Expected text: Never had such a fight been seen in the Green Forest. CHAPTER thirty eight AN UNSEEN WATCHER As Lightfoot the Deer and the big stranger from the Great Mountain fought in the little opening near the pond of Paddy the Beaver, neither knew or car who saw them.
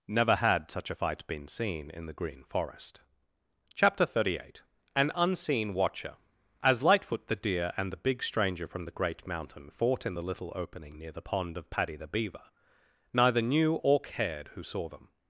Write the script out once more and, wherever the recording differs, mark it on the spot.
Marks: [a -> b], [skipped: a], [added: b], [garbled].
Never had such a fight been seen in the Green Forest. CHAPTER thirty eight AN UNSEEN WATCHER As Lightfoot the Deer and the big stranger from the Great Mountain fought in the little opening near the pond of Paddy the Beaver, neither knew or [car -> cared] who saw them.